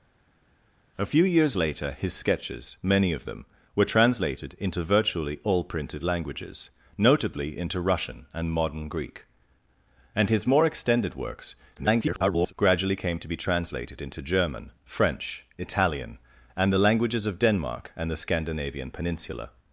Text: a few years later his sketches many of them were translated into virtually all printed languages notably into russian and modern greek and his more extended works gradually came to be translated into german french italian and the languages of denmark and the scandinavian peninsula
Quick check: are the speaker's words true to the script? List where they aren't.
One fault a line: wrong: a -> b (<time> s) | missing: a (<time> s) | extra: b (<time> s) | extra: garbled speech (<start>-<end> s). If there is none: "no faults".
extra: garbled speech (11.8-12.5 s)